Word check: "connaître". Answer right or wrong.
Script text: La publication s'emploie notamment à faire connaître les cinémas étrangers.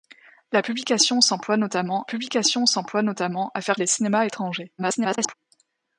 wrong